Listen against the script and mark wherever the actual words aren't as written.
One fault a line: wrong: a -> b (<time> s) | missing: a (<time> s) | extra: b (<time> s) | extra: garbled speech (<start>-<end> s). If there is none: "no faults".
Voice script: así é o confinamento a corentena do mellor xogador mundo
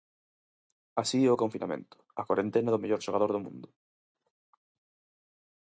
extra: do (3.3 s)